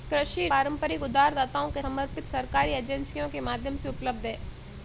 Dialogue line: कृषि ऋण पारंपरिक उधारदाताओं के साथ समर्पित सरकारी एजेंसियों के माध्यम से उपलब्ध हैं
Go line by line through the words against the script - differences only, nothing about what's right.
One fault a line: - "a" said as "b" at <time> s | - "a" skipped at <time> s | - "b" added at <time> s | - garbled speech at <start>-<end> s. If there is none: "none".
- "ऋण" skipped at 0.5 s
- "साथ" skipped at 1.8 s